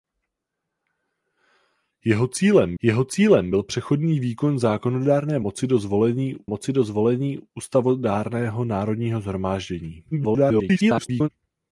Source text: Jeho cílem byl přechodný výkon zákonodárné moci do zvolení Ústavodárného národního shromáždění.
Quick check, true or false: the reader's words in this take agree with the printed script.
false